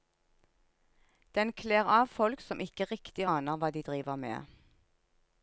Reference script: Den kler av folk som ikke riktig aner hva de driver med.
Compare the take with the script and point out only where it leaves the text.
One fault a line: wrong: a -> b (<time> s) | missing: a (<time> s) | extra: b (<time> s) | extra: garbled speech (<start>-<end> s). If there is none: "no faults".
no faults